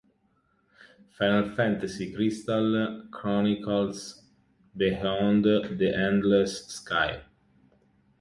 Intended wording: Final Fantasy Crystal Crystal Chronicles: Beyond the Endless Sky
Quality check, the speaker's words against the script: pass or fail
fail